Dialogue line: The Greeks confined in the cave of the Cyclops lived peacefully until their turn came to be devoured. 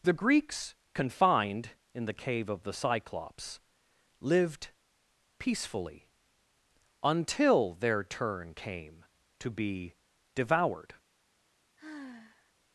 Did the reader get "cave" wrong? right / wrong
right